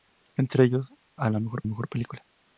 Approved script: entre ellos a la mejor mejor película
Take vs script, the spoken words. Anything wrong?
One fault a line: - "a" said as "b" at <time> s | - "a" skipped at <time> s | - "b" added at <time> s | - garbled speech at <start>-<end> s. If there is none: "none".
none